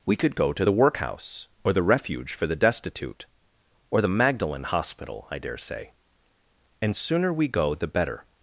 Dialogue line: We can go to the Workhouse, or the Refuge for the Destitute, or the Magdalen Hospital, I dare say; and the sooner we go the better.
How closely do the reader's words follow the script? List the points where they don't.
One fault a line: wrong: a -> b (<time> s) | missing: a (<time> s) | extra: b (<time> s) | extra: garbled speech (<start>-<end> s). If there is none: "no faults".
wrong: can -> could (0.1 s)
missing: the (6.9 s)